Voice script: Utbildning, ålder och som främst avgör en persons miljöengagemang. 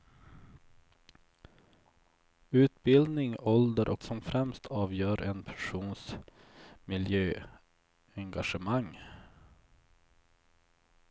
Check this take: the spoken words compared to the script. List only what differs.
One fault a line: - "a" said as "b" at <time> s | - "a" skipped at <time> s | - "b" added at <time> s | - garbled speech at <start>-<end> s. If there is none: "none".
none